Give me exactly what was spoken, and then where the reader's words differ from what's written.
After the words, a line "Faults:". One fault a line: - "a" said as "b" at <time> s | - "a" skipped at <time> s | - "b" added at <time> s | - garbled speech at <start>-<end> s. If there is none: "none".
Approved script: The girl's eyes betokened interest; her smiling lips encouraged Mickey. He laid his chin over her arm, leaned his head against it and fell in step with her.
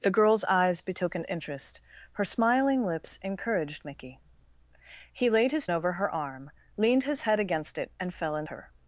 The girl's eyes betokened interest; her smiling lips encouraged Mickey. He laid his over her arm, leaned his head against it and fell in her.
Faults:
- "chin" skipped at 5.7 s
- "step with" skipped at 8.5 s